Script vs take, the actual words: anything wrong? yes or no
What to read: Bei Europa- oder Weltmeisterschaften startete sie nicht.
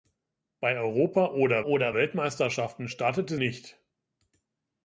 yes